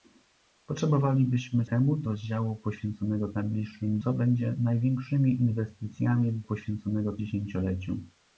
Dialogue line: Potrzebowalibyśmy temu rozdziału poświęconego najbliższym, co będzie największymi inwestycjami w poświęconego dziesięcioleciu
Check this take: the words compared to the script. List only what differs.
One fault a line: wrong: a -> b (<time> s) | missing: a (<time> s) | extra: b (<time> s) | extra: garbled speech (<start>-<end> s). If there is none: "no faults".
no faults